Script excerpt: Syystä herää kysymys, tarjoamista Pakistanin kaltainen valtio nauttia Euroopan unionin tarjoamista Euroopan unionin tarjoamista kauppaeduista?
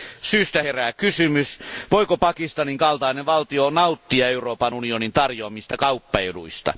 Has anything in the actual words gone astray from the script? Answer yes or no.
yes